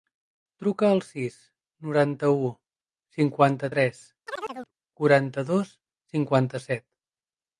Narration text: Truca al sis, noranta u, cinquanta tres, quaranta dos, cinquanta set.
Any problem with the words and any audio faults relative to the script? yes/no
yes